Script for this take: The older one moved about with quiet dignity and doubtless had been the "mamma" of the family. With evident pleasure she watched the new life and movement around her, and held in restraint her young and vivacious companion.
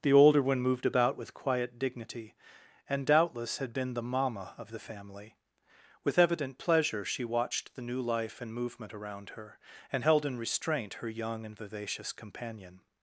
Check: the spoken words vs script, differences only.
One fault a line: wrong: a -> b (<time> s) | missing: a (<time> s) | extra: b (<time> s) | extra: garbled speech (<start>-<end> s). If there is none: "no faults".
no faults